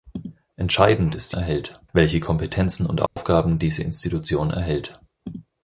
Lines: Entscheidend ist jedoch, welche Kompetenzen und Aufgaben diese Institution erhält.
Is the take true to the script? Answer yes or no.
no